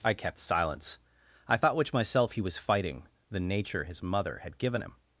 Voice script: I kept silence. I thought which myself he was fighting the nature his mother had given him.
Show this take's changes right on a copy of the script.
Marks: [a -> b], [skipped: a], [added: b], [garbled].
I kept silence. I thought which myself he was fighting the nature his mother had given him.